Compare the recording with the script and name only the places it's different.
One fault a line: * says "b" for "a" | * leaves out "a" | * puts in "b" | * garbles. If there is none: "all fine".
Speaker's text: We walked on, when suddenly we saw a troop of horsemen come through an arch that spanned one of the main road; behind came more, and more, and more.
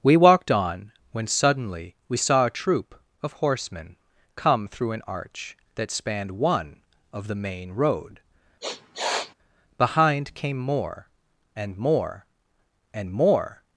all fine